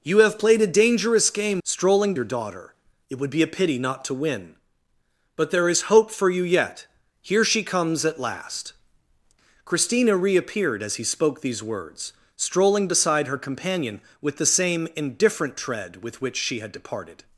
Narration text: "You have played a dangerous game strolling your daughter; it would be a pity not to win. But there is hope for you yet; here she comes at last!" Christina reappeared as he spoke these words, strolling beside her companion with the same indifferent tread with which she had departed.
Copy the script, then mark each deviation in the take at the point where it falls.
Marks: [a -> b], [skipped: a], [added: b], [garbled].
"You have played a dangerous game strolling your daughter; it would be a pity not to win. But there is hope for you yet; here she comes at last!" Christina reappeared as he spoke these words, strolling beside her companion with the same indifferent tread with which she had departed.